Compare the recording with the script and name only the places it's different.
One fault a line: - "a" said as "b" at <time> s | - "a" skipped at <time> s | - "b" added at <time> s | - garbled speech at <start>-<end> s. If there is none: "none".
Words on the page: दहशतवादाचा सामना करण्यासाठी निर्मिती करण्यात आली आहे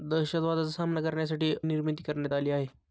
none